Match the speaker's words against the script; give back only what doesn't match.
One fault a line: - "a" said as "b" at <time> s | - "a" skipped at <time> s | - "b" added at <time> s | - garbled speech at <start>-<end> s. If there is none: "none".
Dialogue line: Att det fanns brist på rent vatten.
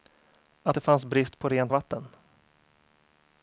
none